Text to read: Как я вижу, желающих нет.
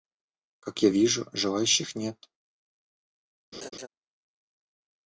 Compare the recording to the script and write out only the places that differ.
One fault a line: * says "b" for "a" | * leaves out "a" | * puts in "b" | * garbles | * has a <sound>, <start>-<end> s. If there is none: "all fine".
* has a laugh, 3.5-3.9 s